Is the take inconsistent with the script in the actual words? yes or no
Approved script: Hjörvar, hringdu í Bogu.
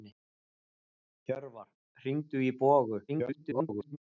yes